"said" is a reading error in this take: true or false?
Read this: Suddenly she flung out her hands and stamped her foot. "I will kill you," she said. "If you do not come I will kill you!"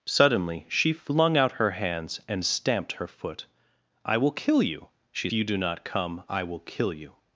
true